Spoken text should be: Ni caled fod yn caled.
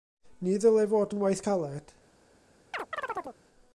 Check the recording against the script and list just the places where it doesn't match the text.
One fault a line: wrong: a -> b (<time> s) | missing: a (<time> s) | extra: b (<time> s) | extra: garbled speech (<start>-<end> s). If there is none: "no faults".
wrong: caled -> ddylai (0.6 s)
extra: waith (1.2 s)